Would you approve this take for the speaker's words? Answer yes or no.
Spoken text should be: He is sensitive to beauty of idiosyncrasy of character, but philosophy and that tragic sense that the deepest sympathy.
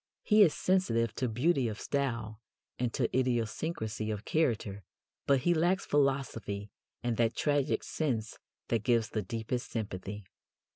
no